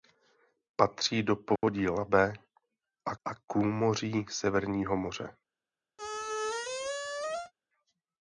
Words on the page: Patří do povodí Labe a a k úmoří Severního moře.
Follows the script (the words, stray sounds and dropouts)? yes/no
no